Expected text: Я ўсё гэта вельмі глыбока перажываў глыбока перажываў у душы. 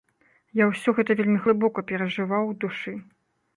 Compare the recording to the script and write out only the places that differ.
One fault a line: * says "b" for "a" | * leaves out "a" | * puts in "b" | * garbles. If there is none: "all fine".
* leaves out "глыбока перажываў"